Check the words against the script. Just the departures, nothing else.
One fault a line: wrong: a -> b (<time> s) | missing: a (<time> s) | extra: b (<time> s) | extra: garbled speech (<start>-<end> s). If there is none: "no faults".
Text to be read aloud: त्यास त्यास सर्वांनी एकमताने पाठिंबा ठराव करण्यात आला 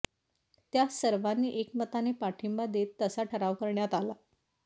missing: त्यास (1.0 s)
extra: देत तसा (2.7 s)